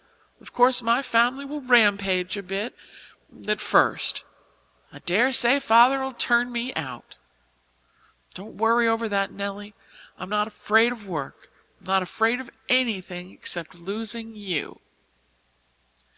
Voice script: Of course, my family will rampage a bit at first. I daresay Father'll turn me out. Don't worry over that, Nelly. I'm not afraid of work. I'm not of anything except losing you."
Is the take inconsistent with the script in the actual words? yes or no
yes